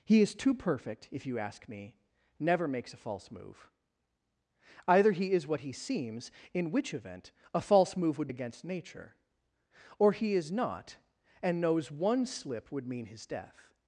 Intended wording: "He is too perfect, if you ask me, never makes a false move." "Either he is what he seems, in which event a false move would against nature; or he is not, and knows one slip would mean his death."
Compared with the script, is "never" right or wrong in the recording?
right